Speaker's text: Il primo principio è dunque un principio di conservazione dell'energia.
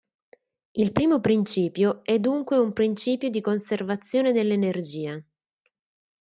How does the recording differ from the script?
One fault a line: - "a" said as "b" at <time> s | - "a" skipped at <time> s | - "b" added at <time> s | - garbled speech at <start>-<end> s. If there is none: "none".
none